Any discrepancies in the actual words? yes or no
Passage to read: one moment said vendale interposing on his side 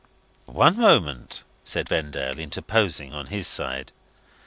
no